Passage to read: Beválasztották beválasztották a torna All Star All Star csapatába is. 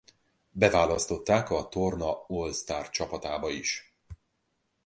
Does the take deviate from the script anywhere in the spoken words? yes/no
yes